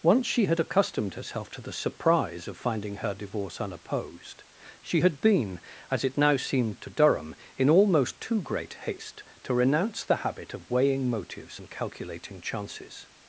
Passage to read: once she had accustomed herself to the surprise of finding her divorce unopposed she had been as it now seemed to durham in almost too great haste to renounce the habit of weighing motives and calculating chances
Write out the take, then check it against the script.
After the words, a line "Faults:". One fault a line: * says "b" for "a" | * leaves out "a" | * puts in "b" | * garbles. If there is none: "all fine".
once she had accustomed herself to the surprise of finding her divorce unopposed she had been as it now seemed to durham in almost too great haste to renounce the habit of weighing motives and calculating chances
Faults:
all fine